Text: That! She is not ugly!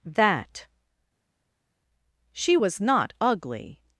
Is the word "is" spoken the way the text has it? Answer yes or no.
no